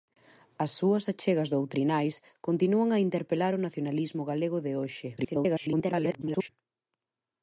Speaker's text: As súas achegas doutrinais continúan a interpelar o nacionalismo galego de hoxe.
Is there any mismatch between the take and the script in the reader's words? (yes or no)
yes